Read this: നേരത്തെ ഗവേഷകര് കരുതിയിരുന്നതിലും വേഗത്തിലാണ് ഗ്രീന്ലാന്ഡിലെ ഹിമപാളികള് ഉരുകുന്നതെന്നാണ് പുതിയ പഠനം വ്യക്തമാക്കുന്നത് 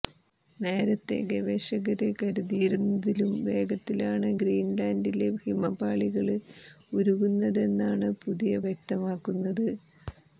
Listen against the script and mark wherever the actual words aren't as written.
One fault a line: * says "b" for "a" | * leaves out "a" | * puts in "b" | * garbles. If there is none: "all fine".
* leaves out "പഠനം"